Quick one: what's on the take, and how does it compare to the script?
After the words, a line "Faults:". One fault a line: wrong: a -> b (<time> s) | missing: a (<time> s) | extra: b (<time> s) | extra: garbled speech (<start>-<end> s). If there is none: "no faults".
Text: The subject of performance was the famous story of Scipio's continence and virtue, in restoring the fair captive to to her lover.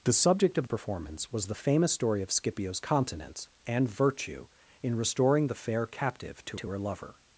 The subject of performance was the famous story of Scipio's continence and virtue, in restoring the fair captive to to her lover.
Faults:
no faults